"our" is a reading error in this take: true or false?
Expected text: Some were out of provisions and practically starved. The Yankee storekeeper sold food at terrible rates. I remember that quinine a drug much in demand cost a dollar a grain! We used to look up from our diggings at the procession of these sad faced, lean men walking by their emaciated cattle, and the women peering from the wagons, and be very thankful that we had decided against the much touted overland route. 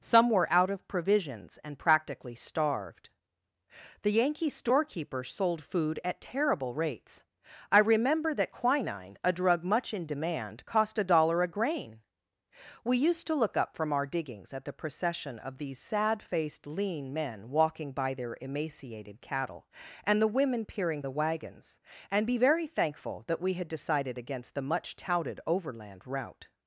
false